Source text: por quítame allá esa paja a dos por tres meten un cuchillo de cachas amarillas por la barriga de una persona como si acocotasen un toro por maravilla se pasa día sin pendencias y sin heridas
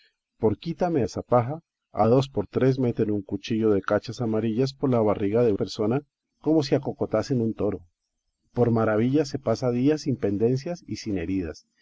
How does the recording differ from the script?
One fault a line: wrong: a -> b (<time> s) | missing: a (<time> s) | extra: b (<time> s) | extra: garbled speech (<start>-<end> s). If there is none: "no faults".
missing: allá (1.0 s)
missing: una (5.5 s)